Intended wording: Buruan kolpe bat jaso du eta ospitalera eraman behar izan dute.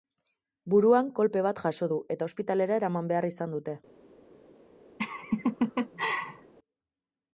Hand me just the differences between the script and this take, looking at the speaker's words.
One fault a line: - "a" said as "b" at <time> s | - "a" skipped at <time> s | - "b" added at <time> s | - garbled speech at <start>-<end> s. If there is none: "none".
none